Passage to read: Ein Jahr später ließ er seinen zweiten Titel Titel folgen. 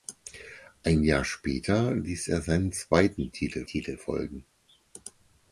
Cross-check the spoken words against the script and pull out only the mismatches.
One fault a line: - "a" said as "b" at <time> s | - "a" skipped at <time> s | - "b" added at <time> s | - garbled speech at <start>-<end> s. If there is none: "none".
none